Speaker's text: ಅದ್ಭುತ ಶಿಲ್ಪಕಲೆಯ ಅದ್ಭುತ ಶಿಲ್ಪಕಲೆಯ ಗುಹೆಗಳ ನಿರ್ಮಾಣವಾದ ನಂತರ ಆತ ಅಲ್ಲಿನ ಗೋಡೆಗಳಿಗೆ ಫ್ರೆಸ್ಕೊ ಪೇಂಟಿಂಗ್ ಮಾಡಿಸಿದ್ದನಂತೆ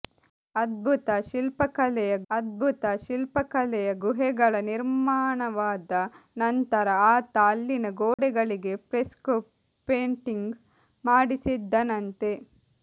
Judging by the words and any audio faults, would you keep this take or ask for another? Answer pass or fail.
fail